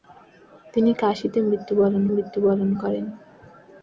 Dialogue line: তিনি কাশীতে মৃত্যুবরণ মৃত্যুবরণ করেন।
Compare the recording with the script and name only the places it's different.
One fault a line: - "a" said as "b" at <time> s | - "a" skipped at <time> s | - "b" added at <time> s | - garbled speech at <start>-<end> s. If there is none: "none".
none